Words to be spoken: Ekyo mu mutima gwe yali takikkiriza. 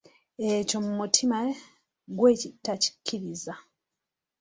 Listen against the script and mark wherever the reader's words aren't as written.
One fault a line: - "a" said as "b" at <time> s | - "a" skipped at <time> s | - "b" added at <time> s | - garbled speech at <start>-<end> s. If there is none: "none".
- "yali" skipped at 2.3 s